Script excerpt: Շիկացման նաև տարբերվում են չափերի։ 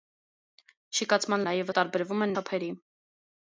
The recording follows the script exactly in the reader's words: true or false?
true